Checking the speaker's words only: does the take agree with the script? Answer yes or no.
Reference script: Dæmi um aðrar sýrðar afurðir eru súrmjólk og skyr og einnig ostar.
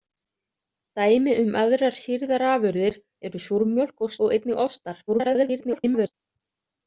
no